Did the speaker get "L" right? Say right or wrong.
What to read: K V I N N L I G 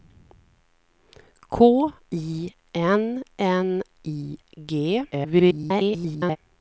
wrong